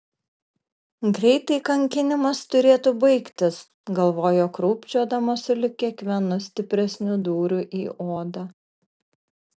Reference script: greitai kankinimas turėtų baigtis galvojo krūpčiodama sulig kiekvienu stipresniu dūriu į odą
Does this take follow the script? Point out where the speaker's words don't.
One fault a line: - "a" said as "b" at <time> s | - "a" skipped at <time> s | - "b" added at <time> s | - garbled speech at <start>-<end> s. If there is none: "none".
none